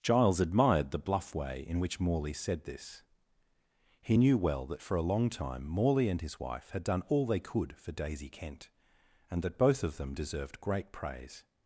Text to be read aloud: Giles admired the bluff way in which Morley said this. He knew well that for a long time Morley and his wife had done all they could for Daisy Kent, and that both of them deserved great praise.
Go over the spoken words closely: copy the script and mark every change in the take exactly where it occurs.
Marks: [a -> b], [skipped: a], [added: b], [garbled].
Giles admired the bluff way in which Morley said this. He knew well that for a long time Morley and his wife had done all they could for Daisy Kent, and that both of them deserved great praise.